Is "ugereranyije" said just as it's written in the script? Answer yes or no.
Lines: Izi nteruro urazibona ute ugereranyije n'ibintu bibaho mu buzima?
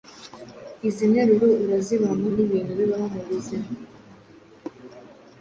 no